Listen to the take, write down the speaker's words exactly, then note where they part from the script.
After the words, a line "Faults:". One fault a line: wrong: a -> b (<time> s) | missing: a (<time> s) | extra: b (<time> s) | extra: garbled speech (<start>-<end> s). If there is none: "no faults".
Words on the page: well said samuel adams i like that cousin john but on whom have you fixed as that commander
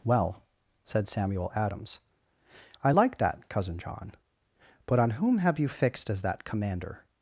well said samuel adams i like that cousin john but on whom have you fixed as that commander
Faults:
no faults